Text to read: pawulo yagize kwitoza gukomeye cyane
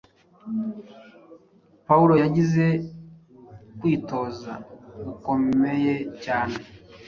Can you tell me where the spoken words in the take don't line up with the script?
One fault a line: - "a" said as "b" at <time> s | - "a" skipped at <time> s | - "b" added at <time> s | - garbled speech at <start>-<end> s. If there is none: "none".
none